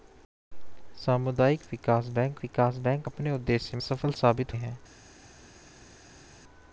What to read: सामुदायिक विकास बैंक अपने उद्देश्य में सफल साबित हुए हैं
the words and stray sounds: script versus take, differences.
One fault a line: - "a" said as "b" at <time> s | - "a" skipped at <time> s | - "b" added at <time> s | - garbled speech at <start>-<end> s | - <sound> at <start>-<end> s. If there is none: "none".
- "विकास बैंक" added at 2.4 s
- "में" skipped at 3.8 s
- "हुए" skipped at 4.6 s